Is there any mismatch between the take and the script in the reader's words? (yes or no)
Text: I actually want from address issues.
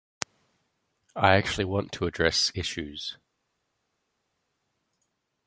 yes